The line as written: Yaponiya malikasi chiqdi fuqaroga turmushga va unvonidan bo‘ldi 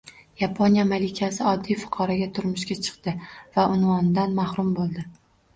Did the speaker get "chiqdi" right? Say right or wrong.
wrong